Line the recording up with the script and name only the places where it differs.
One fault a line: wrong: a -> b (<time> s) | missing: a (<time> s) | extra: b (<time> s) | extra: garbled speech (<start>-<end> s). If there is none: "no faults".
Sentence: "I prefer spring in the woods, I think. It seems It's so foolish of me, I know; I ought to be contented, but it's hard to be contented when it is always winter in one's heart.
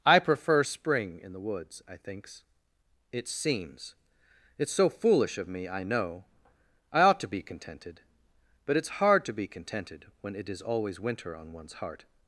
wrong: think -> thinks (2.0 s)
wrong: in -> on (11.3 s)